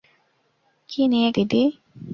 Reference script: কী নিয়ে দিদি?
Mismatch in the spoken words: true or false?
false